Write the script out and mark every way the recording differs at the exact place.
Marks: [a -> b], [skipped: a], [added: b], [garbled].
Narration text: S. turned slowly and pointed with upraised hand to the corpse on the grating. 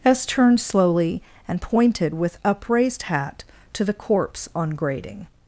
S. turned slowly and pointed with upraised [hand -> hat] to the corpse on [skipped: the] grating.